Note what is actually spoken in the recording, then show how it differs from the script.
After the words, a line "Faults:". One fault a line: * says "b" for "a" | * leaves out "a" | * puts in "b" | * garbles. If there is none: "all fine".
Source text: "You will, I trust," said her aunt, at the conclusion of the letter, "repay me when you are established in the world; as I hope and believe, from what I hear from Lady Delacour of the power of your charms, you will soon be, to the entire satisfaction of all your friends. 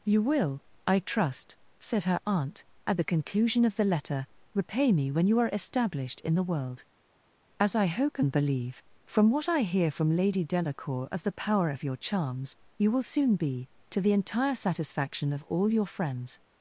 "You will, I trust," said her aunt, at the conclusion of the letter, "repay me when you are established in the world; as I hope and believe, from what I hear from Lady Delacour of the power of your charms, you will soon be, to the entire satisfaction of all your friends.
Faults:
all fine